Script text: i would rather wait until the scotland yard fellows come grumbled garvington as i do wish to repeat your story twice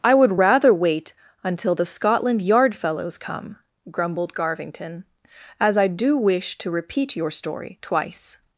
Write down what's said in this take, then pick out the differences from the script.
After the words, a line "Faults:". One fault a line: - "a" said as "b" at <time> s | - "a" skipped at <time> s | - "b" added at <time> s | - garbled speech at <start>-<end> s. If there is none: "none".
i would rather wait until the scotland yard fellows come grumbled garvington as i do wish to repeat your story twice
Faults:
none